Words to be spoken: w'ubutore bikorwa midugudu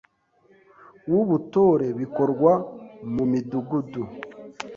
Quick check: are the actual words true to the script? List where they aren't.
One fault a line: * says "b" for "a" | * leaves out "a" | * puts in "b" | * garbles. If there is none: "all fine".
* puts in "mu"